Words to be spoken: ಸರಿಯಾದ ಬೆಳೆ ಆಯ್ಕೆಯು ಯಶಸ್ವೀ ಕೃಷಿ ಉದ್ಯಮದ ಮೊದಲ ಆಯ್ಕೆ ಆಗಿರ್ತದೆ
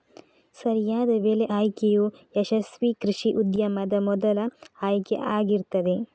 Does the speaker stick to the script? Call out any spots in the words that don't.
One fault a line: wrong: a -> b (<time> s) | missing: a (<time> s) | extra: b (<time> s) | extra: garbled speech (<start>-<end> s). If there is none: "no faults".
no faults